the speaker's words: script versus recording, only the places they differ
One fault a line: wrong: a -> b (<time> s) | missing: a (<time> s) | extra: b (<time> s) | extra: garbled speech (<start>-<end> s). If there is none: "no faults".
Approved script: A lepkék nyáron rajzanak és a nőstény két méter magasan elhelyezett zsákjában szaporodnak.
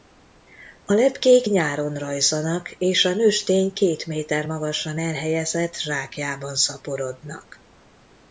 no faults